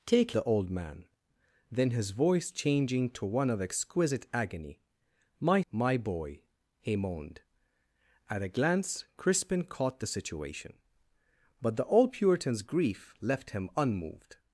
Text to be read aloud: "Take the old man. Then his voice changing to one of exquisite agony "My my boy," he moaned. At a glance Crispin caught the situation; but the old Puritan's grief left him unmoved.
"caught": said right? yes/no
yes